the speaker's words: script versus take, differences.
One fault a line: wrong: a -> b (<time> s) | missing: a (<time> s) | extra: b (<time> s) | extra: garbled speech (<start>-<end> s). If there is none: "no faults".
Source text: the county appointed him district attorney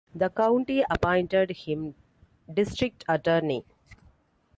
no faults